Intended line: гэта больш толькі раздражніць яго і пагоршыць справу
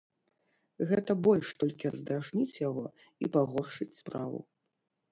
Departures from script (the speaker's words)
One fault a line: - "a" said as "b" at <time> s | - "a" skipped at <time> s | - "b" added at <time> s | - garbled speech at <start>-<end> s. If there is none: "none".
none